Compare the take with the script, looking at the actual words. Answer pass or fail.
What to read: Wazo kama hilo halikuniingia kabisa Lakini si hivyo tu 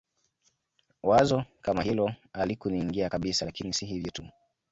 pass